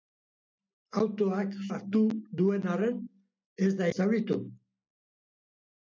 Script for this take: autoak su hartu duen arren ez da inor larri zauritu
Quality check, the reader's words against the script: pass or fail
fail